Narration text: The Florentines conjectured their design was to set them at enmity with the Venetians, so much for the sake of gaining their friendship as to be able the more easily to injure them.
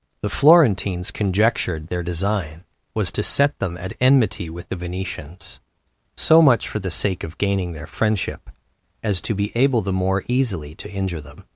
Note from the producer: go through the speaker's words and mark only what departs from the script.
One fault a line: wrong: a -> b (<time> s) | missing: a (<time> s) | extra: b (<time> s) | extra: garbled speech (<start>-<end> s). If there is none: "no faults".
no faults